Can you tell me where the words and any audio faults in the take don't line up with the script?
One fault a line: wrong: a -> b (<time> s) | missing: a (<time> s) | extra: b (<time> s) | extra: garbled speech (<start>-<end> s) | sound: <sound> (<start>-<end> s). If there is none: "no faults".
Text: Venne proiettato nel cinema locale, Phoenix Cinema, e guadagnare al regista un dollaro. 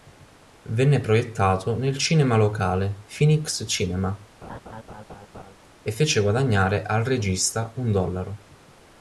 sound: laugh (4.4-5.5 s)
extra: fece (5.9 s)